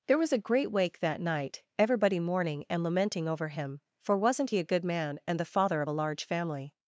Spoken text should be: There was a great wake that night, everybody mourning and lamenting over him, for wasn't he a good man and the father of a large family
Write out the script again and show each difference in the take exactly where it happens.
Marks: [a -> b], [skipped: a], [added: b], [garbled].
There was a great wake that night, everybody mourning and lamenting over him, for wasn't he a good man and the father of a large family